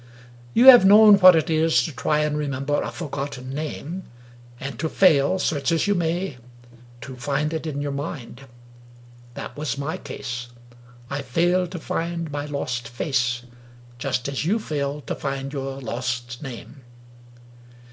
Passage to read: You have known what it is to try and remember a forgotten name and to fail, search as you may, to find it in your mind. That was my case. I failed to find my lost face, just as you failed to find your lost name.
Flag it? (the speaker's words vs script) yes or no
no